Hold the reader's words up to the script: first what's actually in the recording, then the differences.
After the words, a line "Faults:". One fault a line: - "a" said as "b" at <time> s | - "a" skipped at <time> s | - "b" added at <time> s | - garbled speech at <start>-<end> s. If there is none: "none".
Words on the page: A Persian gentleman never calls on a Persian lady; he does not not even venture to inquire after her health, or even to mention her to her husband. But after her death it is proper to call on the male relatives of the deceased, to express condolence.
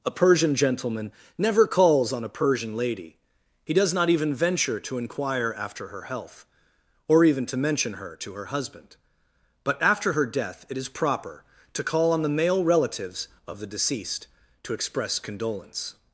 A Persian gentleman never calls on a Persian lady; he does not even venture to inquire after her health, or even to mention her to her husband. But after her death it is proper to call on the male relatives of the deceased, to express condolence.
Faults:
- "not" skipped at 4.1 s